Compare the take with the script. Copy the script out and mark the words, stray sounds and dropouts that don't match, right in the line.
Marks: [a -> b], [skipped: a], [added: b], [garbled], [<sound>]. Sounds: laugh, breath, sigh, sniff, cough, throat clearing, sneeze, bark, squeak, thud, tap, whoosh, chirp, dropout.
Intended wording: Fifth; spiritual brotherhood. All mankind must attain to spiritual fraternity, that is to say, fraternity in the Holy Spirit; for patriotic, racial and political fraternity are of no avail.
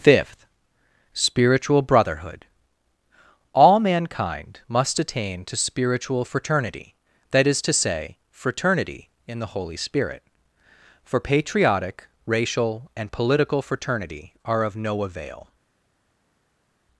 Fifth; spiritual brotherhood. All mankind must attain to spiritual fraternity, that is to say, fraternity in the Holy Spirit; for patriotic, racial and political fraternity are of no avail.